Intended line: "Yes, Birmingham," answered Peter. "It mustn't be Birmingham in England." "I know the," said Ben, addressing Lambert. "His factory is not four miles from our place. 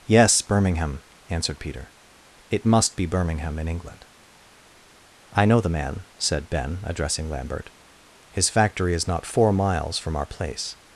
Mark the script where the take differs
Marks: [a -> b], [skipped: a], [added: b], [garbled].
"Yes, Birmingham," answered Peter. "It [mustn't -> must] be Birmingham in England." "I know the," [added: man] said Ben, addressing Lambert. "His factory is not four miles from our place.